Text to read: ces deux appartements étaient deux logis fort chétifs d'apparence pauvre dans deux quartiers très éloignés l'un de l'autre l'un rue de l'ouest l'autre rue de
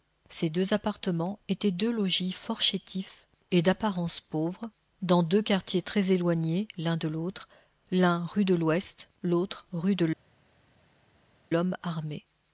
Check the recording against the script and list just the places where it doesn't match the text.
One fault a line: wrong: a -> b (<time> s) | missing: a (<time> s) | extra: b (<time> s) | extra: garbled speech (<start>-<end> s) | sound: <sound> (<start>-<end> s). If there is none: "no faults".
extra: et (3.5 s)